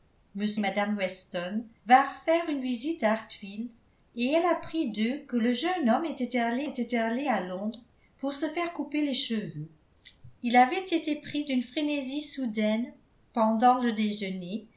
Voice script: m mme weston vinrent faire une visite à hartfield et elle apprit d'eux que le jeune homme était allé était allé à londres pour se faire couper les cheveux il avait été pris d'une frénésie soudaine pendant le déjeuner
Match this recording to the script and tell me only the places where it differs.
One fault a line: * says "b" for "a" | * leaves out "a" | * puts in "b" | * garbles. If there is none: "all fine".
all fine